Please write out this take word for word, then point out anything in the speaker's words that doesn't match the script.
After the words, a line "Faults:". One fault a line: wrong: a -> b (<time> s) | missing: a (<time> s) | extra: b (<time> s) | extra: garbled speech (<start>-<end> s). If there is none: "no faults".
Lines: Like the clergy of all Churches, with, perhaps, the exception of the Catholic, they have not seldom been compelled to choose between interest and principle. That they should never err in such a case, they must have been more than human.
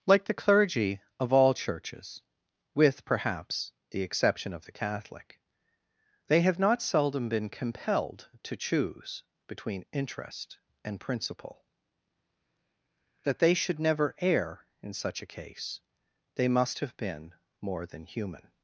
Like the clergy of all Churches, with, perhaps, the exception of the Catholic, they have not seldom been compelled to choose between interest and principle. That they should never err in such a case, they must have been more than human.
Faults:
no faults